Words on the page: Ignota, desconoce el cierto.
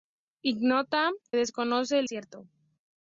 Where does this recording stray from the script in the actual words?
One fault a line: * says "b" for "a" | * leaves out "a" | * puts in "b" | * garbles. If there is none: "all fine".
all fine